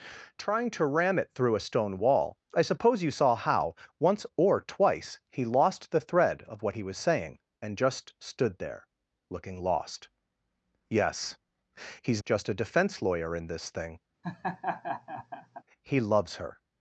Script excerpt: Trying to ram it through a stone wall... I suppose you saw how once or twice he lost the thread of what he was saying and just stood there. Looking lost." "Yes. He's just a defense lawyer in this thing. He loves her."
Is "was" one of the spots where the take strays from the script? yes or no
no